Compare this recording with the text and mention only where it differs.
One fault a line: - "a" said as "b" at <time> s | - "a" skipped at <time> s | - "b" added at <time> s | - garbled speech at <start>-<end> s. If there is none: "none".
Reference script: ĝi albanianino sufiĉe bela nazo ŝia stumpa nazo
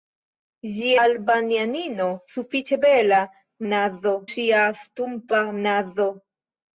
none